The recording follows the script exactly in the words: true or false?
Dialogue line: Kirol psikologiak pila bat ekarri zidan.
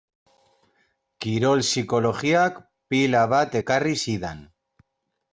true